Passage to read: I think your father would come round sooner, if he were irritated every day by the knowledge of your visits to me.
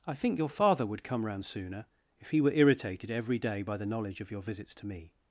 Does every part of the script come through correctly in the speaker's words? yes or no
yes